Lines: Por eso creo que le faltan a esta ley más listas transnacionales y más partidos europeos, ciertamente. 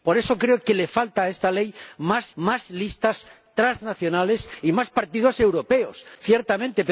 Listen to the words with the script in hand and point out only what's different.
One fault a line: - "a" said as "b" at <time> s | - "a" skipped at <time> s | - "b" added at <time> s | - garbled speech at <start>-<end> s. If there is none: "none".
- "más" added at 2.4 s